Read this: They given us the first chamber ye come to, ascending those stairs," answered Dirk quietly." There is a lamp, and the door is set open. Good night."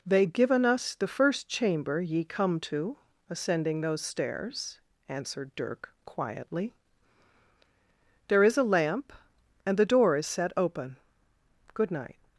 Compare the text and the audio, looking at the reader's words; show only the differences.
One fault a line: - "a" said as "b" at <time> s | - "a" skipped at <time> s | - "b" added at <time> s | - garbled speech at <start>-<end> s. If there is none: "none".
none